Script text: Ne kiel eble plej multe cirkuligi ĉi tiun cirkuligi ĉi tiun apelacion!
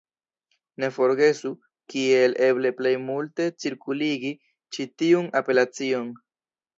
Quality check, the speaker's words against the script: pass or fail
fail